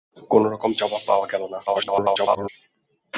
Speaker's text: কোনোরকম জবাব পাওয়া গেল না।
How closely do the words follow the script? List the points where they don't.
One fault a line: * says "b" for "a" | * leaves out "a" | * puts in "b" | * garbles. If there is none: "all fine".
* garbles